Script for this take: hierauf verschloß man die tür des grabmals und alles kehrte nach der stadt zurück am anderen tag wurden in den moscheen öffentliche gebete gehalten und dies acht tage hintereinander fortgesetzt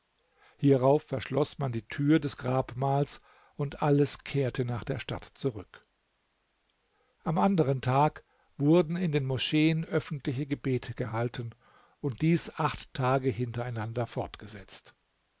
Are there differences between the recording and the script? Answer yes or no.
no